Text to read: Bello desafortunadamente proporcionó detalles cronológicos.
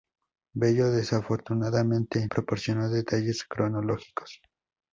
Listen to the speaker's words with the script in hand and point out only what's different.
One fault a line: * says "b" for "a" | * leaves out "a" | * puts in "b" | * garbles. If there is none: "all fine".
all fine